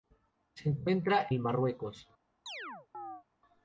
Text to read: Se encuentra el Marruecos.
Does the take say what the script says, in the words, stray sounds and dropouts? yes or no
no